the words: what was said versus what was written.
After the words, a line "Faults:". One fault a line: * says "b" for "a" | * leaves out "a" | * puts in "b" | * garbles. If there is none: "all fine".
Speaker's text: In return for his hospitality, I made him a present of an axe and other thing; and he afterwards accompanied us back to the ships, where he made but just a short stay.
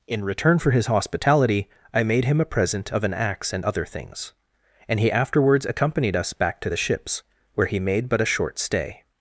In return for his hospitality, I made him a present of an axe and other things; and he afterwards accompanied us back to the ships, where he made but a short stay.
Faults:
* says "things" for "thing"
* leaves out "just"